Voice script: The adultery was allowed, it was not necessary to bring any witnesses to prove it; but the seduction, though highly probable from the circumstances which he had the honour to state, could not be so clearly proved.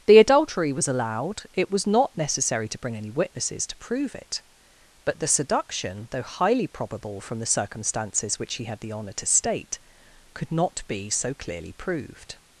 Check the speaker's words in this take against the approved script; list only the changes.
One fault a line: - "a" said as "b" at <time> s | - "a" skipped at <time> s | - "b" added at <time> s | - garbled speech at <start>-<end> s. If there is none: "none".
none